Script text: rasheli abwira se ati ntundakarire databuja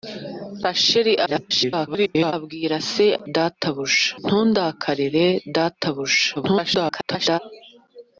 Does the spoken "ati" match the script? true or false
false